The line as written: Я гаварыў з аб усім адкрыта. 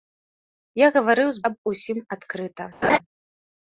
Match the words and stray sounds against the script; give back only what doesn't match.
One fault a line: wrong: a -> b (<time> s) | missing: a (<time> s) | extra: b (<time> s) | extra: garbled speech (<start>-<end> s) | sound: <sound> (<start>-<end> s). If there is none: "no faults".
sound: laugh (2.8-3.0 s)